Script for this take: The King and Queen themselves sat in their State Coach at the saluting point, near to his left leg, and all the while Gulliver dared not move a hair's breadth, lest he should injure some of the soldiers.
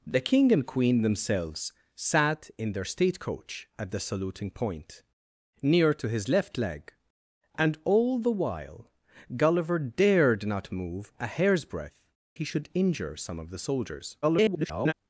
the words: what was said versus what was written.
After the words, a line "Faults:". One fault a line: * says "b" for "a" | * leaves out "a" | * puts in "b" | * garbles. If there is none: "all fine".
The King and Queen themselves sat in their State Coach at the saluting point, near to his left leg, and all the while Gulliver dared not move a hair's breadth, he should injure some of the soldiers. [garbled]
Faults:
* leaves out "lest"
* garbles